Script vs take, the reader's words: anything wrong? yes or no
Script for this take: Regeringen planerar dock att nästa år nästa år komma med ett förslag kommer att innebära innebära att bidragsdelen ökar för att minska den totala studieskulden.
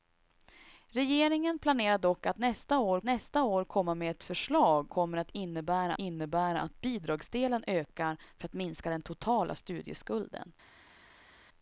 no